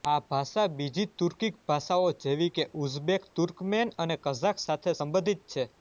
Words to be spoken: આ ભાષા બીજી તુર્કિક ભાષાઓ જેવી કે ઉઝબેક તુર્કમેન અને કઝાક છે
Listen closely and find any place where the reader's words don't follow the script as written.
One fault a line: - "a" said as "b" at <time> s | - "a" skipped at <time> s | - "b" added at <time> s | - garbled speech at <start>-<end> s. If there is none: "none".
- "સાથે સંબંધિત" added at 4.6 s